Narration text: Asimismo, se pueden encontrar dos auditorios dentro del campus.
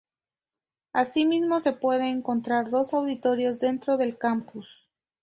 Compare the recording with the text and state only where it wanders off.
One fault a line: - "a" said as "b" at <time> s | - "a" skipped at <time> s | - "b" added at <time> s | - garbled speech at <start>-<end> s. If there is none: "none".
none